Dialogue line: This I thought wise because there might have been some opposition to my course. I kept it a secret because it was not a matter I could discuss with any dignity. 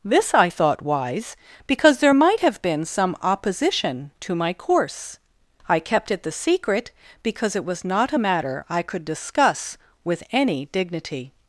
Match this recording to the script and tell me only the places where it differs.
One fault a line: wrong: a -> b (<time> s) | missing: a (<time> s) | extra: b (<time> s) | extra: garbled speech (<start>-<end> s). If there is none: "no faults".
wrong: a -> the (6.2 s)